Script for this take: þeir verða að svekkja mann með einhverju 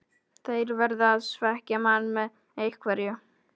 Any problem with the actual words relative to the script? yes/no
no